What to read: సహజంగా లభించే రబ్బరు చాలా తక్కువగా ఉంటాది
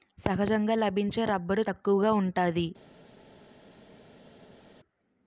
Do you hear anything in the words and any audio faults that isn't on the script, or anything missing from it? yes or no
yes